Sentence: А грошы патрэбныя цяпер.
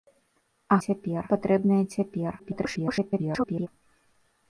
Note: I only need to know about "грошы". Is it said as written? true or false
false